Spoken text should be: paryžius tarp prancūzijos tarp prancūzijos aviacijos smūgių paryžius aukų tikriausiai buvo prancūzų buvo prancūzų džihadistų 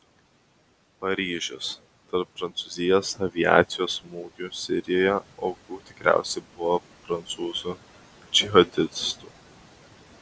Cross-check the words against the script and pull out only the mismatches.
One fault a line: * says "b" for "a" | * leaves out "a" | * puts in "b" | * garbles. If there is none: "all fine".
* leaves out "tarp prancūzijos"
* says "sirijoje" for "paryžius"
* leaves out "buvo prancūzų"